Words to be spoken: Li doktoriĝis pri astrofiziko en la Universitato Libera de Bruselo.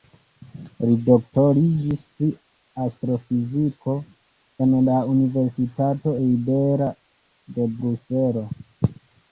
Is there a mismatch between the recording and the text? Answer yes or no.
no